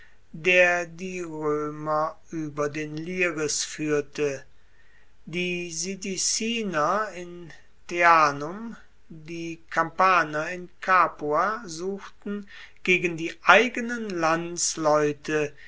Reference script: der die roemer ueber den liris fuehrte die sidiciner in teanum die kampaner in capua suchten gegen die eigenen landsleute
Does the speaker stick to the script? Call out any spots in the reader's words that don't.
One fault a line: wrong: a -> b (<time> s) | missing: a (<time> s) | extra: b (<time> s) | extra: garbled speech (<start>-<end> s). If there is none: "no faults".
no faults